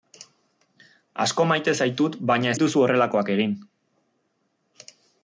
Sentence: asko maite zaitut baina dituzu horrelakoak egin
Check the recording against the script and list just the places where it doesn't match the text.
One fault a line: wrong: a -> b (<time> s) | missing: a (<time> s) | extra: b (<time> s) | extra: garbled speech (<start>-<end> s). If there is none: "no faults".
no faults